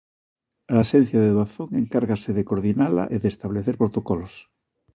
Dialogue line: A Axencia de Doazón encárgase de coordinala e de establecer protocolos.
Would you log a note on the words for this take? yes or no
no